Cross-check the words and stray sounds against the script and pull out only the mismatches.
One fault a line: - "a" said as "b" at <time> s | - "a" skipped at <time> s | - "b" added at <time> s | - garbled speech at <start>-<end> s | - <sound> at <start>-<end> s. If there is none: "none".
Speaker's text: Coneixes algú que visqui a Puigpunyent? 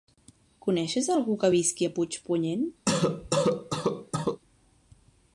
- cough at 2.9-4.4 s